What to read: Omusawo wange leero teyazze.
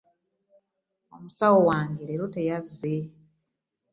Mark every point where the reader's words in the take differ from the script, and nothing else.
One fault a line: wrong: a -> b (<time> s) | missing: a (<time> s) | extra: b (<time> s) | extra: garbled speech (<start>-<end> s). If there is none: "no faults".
no faults